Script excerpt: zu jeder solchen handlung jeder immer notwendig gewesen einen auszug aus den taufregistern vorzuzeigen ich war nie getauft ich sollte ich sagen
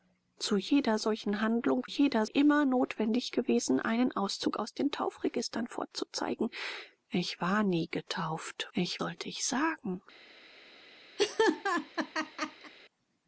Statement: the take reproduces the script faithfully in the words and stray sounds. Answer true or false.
false